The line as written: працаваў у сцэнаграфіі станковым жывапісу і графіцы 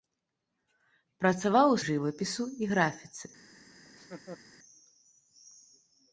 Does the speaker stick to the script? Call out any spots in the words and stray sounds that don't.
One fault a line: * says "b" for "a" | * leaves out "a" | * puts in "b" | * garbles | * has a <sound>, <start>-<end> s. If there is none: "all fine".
* leaves out "сцэнаграфіі станковым"
* has a laugh, 3.8-4.4 s